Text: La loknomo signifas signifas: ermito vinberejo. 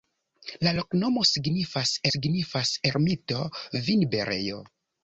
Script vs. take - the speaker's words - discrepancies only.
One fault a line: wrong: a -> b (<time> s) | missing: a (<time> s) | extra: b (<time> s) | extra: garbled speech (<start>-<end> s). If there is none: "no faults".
no faults